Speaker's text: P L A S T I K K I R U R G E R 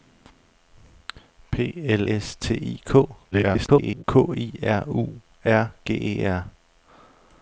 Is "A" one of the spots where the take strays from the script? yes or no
yes